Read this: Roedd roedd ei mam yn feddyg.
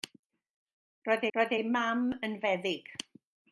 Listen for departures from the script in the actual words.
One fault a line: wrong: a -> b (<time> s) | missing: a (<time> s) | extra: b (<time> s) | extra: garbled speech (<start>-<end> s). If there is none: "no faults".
no faults